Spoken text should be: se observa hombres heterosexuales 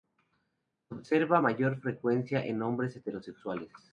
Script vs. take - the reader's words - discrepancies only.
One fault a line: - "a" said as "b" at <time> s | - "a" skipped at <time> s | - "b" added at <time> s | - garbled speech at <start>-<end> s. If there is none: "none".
- "mayor frecuencia en" added at 1.4 s